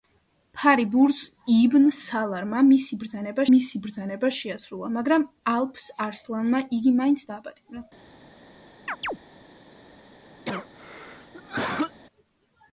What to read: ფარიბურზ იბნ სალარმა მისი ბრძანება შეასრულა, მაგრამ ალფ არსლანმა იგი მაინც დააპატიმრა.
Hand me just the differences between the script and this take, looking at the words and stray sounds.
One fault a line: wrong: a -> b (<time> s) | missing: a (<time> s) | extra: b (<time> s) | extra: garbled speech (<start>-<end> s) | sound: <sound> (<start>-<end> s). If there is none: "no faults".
extra: მისი ბრძანება (3.5 s)
sound: chirp (8.9-9.2 s)
sound: cough (10.5-12.0 s)